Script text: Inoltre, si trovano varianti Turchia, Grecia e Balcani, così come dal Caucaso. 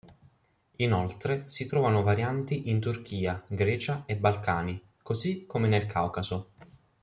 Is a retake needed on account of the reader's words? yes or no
yes